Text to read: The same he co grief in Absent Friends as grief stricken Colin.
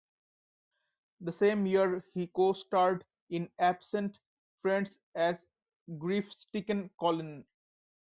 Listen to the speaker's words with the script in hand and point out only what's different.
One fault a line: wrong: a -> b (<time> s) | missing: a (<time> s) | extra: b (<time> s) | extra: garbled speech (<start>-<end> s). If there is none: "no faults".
extra: year (1.7 s)
wrong: grief -> starred (2.5 s)